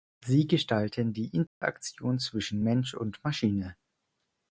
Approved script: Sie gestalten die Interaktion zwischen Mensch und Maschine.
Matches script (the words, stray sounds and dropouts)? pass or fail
fail